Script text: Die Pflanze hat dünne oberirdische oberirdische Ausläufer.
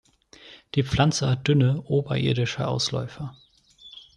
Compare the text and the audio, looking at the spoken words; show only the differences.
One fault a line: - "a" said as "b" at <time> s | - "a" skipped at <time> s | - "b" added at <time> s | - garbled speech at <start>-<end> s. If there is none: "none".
- "oberirdische" skipped at 2.7 s